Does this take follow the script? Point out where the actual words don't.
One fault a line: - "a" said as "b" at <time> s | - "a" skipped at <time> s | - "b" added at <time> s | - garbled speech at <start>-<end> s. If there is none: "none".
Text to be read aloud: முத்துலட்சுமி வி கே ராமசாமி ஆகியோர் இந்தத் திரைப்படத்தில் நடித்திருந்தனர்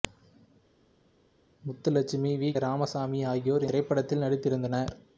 - "கே" skipped at 2.5 s
- "இந்தத்" skipped at 3.7 s